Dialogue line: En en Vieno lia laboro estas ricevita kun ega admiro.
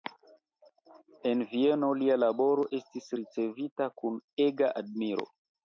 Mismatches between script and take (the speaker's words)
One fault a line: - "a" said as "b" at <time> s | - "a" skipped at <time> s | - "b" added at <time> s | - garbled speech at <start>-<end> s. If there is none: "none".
- "en" skipped at 1.4 s
- "estas" said as "estis" at 2.8 s